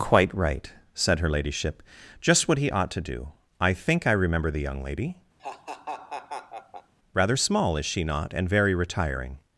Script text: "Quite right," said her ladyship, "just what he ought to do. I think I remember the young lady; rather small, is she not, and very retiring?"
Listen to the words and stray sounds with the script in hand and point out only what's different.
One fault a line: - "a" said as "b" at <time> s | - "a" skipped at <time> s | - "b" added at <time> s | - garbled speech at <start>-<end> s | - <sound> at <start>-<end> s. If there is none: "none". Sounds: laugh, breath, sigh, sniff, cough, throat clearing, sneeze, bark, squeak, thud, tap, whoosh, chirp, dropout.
- laugh at 5.4-6.9 s